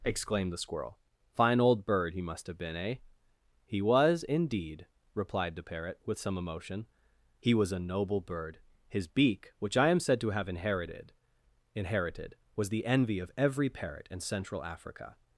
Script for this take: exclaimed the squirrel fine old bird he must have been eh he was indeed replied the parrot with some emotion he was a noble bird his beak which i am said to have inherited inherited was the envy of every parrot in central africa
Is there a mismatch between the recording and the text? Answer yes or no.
no